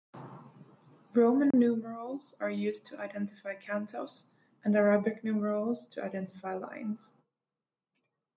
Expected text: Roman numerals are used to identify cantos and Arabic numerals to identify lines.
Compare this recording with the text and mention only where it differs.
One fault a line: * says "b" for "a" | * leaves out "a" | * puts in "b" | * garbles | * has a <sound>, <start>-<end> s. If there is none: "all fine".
* has a dropout, 1.5-1.5 s